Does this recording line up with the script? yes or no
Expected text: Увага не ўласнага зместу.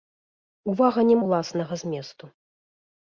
yes